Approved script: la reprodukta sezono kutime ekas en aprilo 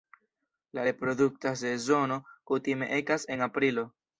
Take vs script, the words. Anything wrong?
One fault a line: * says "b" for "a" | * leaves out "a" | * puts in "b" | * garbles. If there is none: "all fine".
all fine